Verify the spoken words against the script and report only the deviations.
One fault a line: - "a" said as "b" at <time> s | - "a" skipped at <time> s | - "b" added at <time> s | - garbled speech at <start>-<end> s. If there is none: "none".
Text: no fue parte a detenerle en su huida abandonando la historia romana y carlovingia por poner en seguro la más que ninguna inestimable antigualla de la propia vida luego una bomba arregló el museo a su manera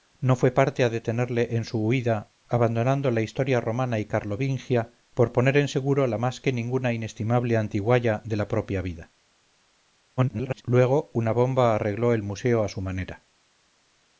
- garbled speech at 10.2-10.6 s